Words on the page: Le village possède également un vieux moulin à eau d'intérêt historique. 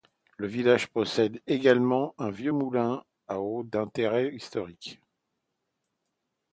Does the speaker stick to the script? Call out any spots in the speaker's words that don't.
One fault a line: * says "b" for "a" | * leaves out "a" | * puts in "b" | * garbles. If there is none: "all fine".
all fine